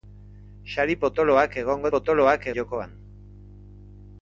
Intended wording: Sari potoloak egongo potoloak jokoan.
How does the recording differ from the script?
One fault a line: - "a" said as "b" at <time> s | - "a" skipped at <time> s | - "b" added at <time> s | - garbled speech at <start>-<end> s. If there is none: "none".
none